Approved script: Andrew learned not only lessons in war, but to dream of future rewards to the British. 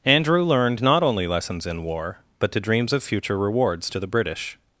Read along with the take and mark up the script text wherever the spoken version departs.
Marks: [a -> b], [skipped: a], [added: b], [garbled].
Andrew learned not only lessons in war, but to [dream -> dreams] of future rewards to the British.